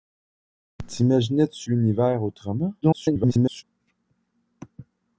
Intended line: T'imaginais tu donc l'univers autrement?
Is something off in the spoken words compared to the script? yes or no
yes